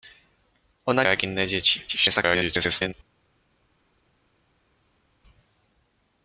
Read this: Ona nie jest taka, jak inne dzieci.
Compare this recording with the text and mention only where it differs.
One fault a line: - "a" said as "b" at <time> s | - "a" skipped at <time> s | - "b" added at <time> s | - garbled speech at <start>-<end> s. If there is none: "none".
- "nie jest taka" skipped at 1.0 s
- garbled speech at 1.9-2.9 s